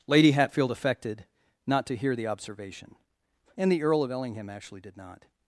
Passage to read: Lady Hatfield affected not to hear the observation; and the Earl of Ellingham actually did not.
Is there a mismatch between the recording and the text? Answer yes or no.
no